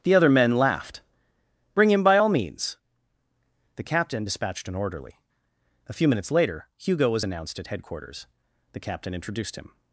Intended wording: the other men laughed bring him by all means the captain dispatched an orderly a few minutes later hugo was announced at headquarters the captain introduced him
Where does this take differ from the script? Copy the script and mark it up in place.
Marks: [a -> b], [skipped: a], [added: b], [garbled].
the other men laughed bring him by all means the captain dispatched an orderly a few minutes later hugo was announced at headquarters the captain introduced him